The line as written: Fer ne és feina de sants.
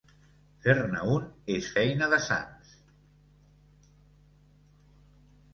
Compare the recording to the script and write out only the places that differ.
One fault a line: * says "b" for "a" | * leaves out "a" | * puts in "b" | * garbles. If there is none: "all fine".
* puts in "un"